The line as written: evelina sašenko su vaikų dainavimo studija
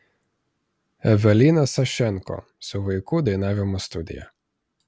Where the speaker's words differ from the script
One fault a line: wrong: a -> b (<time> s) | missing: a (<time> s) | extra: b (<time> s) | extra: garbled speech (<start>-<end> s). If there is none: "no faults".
no faults